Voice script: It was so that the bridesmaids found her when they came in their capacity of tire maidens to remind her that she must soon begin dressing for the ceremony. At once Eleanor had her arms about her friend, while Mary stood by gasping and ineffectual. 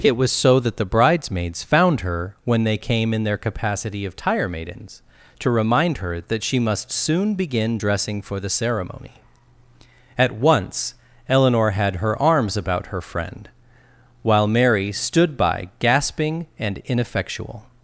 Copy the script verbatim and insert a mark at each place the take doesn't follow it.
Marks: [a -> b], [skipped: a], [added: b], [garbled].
It was so that the bridesmaids found her when they came in their capacity of tire maidens to remind her that she must soon begin dressing for the ceremony. At once Eleanor had her arms about her friend, while Mary stood by gasping and ineffectual.